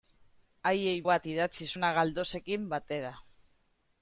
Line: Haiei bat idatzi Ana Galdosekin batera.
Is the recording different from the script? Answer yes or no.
no